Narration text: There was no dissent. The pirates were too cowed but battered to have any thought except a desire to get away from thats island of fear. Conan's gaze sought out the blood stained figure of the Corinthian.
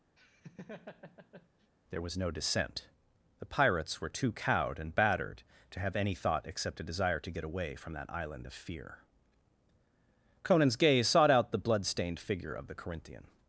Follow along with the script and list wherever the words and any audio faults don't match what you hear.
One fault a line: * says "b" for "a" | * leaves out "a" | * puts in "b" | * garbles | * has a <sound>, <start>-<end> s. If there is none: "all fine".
* has a laugh, 0.2-1.7 s
* says "and" for "but"
* says "that" for "thats"